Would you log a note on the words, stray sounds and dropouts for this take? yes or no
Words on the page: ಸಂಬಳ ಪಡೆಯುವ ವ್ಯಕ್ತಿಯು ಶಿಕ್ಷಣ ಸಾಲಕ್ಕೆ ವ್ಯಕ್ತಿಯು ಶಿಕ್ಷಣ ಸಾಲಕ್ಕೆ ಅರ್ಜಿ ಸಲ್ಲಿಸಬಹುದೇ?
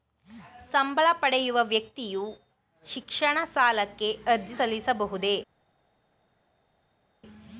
yes